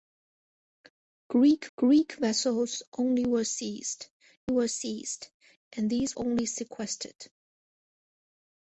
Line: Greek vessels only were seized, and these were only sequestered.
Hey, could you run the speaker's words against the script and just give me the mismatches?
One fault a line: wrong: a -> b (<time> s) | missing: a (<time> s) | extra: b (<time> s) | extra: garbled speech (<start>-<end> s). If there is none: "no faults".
extra: greek (1.8 s)
extra: were seized (4.5 s)
missing: were (6.2 s)